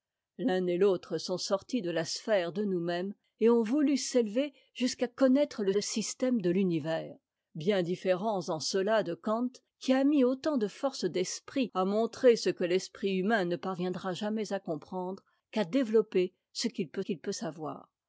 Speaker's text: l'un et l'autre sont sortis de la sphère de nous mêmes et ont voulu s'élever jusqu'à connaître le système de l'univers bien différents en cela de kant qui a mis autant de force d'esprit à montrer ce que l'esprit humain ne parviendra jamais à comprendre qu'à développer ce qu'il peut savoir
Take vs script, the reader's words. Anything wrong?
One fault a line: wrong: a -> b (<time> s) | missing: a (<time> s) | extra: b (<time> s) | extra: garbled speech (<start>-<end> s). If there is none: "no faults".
extra: le (5.7 s)
extra: qu'il peut (17.0 s)